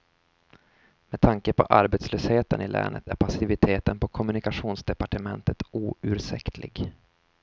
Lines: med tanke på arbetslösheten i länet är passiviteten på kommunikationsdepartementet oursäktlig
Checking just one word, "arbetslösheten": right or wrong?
right